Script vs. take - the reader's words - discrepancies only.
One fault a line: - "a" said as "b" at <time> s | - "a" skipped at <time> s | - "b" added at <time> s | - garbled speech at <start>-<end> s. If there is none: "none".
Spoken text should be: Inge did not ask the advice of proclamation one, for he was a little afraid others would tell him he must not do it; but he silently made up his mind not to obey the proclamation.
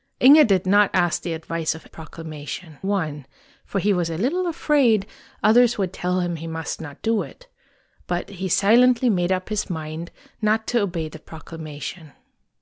none